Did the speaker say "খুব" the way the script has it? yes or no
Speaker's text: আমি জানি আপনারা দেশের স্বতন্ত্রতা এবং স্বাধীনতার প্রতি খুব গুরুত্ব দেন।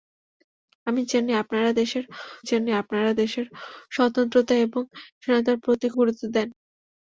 no